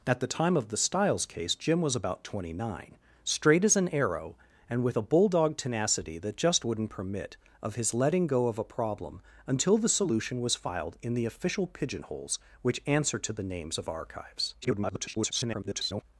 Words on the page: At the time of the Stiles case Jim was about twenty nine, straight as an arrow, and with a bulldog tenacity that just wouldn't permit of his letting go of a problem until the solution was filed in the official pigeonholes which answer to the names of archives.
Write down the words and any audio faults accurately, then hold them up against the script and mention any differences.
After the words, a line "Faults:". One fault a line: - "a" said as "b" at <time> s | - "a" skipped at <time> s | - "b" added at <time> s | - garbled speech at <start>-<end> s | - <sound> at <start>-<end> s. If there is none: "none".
At the time of the Stiles case Jim was about twenty nine, straight as an arrow, and with a bulldog tenacity that just wouldn't permit of his letting go of a problem until the solution was filed in the official pigeonholes which answer to the names of archives. [garbled]
Faults:
- garbled speech at 14.6-16.0 s